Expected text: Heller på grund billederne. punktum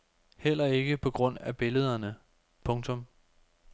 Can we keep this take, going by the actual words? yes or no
no